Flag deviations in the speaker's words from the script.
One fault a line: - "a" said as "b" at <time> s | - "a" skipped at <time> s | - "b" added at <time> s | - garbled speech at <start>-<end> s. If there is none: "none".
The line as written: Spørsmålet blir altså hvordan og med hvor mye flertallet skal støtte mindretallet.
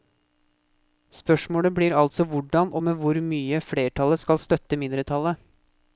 none